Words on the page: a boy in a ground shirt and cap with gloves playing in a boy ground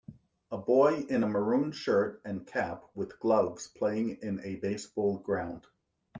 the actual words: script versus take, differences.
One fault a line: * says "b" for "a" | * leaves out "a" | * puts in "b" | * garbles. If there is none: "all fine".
* says "maroon" for "ground"
* says "baseball" for "boy"